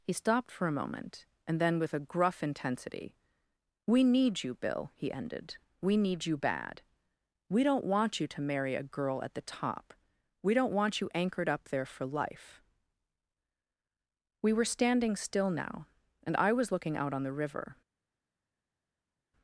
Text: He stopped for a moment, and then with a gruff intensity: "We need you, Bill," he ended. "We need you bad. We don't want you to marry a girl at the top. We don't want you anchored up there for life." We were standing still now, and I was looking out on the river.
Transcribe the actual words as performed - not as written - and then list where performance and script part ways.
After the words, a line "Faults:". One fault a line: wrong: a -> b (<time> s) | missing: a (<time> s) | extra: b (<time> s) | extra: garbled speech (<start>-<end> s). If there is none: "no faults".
He stopped for a moment, and then with a gruff intensity: "We need you, Bill," he ended. "We need you bad. We don't want you to marry a girl at the top. We don't want you anchored up there for life." We were standing still now, and I was looking out on the river.
Faults:
no faults